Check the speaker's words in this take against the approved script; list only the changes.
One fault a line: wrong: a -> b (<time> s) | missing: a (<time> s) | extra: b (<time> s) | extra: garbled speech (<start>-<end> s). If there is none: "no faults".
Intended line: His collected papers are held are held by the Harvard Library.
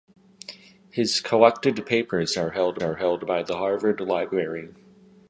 no faults